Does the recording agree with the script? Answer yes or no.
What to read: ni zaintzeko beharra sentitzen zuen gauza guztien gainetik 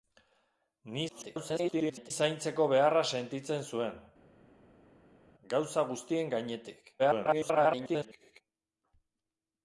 no